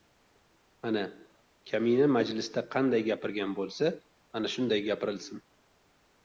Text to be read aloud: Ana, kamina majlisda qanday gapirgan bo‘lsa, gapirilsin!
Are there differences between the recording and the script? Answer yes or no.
yes